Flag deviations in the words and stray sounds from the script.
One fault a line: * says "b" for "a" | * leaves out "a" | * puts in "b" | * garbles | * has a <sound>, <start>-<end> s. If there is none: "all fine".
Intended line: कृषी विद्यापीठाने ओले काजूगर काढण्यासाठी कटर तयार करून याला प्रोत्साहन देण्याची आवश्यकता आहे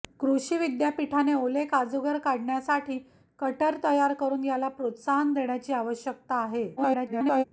* garbles